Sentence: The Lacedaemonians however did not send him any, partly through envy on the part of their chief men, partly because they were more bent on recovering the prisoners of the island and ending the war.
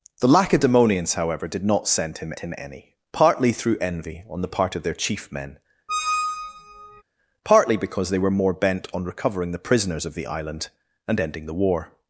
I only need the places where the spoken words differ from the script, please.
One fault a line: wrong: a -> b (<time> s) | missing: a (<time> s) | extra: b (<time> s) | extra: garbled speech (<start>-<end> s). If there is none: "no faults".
extra: him (2.4 s)